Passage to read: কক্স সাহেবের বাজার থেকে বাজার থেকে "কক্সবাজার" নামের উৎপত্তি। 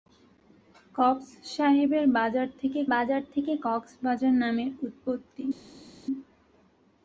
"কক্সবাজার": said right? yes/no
yes